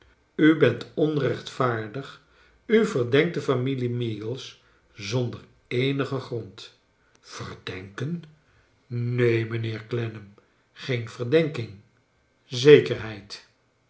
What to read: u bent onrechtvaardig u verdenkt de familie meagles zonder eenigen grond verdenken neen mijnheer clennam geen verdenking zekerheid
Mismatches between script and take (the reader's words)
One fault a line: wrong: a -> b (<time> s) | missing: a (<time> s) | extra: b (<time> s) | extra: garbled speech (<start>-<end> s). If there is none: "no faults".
no faults